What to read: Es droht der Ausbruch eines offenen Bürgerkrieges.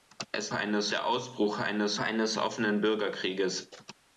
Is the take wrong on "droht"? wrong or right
wrong